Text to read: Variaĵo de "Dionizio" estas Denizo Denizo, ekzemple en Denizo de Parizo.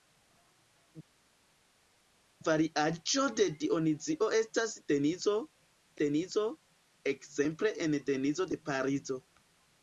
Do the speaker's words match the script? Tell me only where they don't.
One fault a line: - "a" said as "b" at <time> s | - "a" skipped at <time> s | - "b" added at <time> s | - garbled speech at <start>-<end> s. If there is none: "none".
none